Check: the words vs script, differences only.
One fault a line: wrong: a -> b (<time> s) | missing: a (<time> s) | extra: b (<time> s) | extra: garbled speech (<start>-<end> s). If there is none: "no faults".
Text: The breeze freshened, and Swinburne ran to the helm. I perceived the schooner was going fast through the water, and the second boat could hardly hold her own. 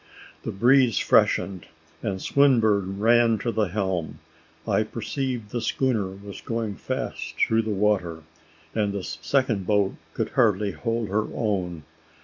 no faults